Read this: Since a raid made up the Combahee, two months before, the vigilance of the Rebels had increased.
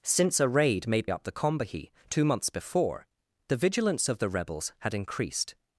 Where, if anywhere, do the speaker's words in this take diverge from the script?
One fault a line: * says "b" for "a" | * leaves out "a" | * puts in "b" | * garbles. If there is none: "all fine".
all fine